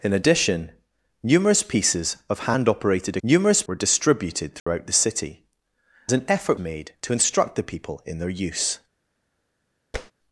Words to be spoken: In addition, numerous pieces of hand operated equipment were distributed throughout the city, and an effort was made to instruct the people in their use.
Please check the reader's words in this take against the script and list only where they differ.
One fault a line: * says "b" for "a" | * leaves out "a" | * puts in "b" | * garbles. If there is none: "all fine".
* says "numerous" for "equipment"
* leaves out "and"
* leaves out "was"